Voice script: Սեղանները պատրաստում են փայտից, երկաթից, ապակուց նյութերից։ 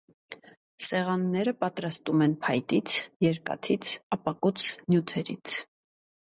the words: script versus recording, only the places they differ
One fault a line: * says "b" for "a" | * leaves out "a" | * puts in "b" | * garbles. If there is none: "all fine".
all fine